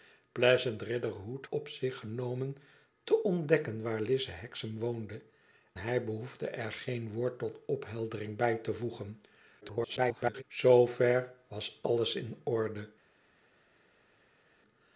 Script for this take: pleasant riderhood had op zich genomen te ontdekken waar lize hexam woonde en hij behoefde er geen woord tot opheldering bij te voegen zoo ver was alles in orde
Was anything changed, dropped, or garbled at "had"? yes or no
yes